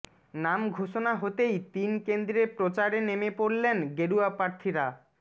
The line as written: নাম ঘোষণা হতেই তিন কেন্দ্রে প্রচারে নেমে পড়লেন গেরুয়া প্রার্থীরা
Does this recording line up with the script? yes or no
yes